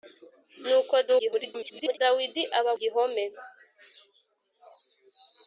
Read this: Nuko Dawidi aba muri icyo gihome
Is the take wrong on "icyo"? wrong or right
wrong